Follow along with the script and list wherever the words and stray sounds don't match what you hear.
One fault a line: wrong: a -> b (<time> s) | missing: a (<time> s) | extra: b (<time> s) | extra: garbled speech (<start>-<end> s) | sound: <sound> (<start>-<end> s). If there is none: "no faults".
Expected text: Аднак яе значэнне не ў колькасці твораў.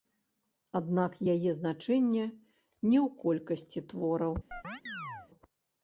sound: chirp (4.5-5.3 s)